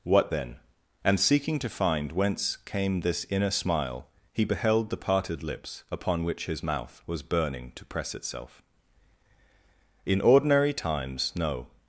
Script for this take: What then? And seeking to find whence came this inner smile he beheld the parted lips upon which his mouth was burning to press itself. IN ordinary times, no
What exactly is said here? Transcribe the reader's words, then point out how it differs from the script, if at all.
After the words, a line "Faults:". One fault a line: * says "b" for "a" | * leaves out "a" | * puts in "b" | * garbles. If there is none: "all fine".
What then? And seeking to find whence came this inner smile he beheld the parted lips upon which his mouth was burning to press itself. IN ordinary times, no
Faults:
all fine